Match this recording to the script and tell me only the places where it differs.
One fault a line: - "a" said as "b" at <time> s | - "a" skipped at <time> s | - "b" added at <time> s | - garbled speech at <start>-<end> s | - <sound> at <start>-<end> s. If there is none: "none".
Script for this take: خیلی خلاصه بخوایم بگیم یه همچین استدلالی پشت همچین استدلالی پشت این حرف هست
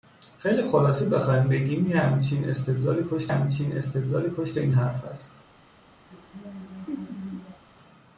- laugh at 6.1-7.6 s